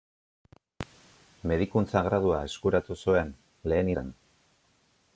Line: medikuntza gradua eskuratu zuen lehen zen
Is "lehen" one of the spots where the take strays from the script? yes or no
no